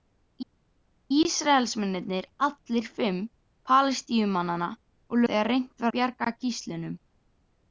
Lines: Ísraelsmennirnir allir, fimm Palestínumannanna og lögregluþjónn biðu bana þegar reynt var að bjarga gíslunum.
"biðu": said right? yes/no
no